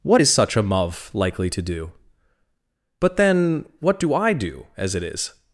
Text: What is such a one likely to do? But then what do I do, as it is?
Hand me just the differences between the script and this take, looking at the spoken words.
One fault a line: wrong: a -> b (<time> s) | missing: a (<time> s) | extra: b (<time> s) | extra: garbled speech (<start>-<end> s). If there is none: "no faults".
wrong: one -> muv (0.6 s)